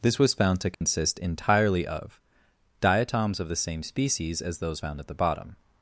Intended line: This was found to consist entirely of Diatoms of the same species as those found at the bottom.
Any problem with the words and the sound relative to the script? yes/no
yes